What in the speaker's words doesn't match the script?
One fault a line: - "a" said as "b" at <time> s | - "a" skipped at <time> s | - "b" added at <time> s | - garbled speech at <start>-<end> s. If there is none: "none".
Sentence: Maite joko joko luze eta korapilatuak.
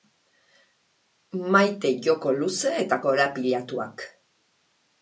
- "joko" skipped at 2.4 s